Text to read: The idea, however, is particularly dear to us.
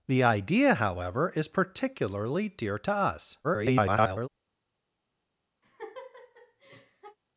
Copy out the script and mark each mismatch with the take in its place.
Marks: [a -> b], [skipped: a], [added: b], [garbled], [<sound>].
The idea, however, is particularly dear to us. [garbled] [laugh]